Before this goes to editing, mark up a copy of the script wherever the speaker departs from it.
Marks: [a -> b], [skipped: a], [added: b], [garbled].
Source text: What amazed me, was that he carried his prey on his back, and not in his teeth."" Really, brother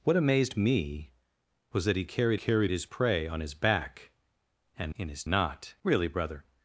What amazed me, was that he carried [added: carried] his prey on his back, and [skipped: not] in his [teeth."" -> not] Really, brother